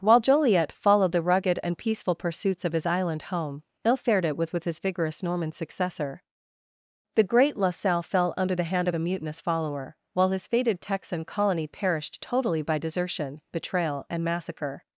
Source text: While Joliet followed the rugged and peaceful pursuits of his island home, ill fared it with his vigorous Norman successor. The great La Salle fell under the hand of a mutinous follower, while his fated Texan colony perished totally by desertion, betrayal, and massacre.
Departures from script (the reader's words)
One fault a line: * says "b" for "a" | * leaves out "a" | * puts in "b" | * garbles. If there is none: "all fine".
* puts in "with"